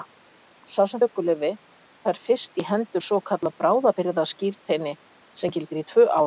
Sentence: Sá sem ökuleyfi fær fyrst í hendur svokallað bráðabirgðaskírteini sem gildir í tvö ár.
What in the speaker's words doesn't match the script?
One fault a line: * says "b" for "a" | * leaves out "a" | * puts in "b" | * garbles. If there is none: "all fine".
all fine